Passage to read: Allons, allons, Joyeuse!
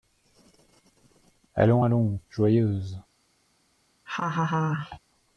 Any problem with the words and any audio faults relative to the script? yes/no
yes